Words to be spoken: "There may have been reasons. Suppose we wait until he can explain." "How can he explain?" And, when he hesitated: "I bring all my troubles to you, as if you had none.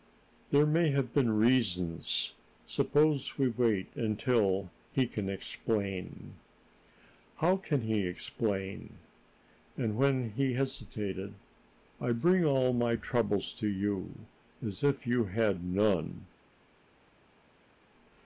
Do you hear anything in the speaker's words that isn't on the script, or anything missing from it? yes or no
no